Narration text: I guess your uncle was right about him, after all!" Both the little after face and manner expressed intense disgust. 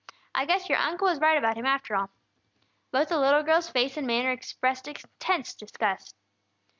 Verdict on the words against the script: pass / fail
fail